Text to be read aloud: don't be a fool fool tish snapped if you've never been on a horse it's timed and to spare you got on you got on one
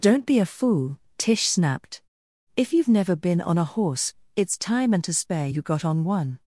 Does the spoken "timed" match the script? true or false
false